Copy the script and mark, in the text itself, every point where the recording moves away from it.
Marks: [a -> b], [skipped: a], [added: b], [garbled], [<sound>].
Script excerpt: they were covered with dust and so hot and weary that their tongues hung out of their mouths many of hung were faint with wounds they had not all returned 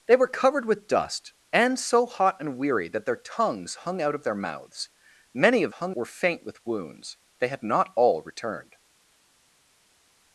they were covered with dust and so hot and weary that their tongues hung out of their mouths many of hung were faint with wounds they had not all returned